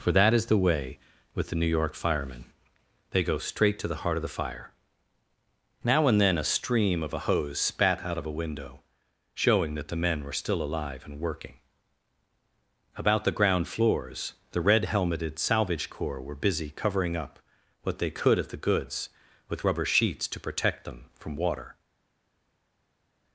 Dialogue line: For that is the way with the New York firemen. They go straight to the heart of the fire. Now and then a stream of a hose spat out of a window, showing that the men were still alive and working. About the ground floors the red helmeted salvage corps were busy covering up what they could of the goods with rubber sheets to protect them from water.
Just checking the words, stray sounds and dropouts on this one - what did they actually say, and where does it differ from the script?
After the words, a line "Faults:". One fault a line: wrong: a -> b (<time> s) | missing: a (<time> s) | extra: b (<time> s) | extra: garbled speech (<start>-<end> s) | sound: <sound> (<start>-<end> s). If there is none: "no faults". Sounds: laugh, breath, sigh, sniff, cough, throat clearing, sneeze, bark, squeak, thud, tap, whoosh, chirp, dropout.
For that is the way with the New York firemen. They go straight to the heart of the fire. Now and then a stream of a hose spat out of a window, showing that the men were still alive and working. About the ground floors the red helmeted salvage corps were busy covering up what they could of the goods with rubber sheets to protect them from water.
Faults:
no faults